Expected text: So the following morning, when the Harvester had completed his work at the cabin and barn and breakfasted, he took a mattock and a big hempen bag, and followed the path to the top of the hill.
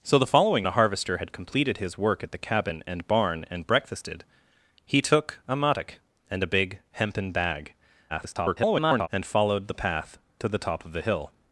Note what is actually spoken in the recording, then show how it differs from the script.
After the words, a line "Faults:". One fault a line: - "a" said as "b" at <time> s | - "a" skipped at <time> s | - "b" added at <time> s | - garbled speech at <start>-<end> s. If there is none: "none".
So the following the Harvester had completed his work at the cabin and barn and breakfasted, he took a mattock and a big hempen bag, [garbled] and followed the path to the top of the hill.
Faults:
- "morning when" skipped at 0.7 s
- garbled speech at 8.1-9.1 s